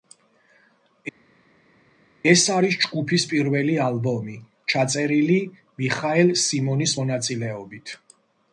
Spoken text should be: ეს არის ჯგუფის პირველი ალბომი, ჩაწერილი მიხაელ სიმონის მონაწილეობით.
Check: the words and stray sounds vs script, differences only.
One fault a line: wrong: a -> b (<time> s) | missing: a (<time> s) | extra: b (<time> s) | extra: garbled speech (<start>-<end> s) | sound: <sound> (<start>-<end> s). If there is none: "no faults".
no faults